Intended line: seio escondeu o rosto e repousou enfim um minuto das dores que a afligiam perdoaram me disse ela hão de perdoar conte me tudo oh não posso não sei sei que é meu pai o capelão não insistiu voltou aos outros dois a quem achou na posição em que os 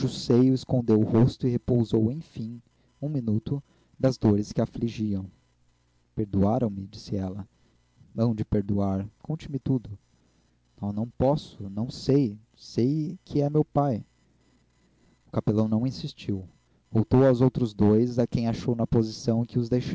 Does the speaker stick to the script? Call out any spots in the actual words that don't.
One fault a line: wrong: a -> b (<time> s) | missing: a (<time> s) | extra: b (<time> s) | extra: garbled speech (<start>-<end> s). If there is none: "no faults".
no faults